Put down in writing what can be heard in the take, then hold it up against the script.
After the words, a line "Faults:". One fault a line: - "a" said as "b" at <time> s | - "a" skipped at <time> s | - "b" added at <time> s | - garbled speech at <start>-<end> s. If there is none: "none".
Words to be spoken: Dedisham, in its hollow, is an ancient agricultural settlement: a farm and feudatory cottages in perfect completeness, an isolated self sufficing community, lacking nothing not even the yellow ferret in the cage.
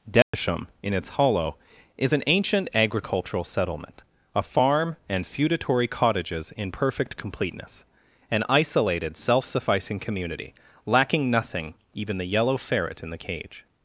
Dedisham, in its hollow, is an ancient agricultural settlement: a farm and feudatory cottages in perfect completeness, an isolated self sufficing community, lacking nothing even the yellow ferret in the cage.
Faults:
- "not" skipped at 11.7 s